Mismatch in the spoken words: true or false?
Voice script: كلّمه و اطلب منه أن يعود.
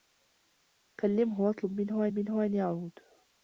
true